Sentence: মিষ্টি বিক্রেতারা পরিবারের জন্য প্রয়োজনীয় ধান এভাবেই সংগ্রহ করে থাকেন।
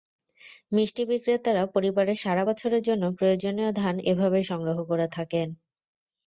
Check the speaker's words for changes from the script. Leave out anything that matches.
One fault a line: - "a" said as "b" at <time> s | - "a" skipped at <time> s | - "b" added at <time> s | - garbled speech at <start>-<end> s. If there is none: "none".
- "সারা বছরের" added at 2.2 s